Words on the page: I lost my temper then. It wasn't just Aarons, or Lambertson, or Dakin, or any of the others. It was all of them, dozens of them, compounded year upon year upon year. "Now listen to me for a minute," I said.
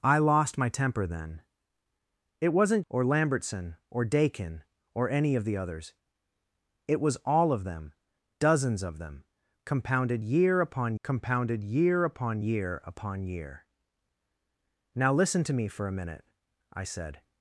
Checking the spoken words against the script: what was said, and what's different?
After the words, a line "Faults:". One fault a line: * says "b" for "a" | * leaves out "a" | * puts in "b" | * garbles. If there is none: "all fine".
I lost my temper then. It wasn't or Lambertson, or Dakin, or any of the others. It was all of them, dozens of them, compounded year upon compounded year upon year upon year. "Now listen to me for a minute," I said.
Faults:
* leaves out "just Aarons"
* puts in "compounded year upon"